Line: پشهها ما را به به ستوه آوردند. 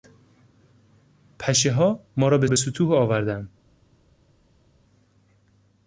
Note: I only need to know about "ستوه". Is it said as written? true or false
true